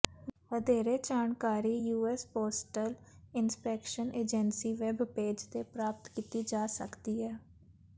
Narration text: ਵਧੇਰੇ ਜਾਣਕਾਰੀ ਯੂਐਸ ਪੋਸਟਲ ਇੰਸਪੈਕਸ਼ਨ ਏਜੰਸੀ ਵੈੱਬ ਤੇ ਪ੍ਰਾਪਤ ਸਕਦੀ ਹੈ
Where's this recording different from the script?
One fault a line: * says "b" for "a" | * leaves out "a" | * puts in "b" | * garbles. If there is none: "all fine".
* puts in "ਪੇਜ"
* puts in "ਕੀਤੀ ਜਾ"